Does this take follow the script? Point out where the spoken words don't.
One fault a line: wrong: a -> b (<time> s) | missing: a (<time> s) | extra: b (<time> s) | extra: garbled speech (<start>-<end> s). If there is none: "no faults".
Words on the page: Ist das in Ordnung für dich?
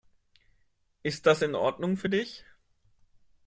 no faults